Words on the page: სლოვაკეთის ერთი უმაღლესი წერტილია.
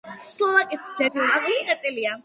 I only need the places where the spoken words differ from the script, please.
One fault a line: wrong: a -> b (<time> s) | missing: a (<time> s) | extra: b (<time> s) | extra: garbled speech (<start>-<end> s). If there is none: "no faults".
no faults